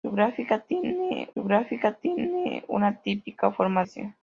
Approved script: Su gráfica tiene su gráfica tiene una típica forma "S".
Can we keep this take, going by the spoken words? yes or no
yes